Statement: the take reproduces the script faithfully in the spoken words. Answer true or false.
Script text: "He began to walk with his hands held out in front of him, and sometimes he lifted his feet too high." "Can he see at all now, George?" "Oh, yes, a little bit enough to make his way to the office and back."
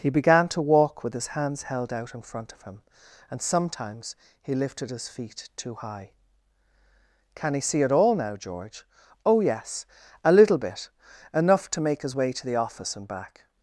true